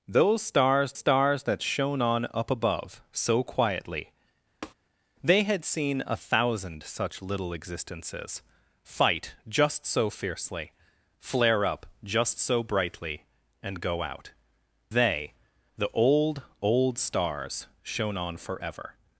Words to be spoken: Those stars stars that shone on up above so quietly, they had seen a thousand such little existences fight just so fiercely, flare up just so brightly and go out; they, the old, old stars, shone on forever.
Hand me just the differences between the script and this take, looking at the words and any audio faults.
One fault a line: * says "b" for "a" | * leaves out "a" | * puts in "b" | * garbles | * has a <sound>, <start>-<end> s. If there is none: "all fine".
* has a tap, 4.6-4.7 s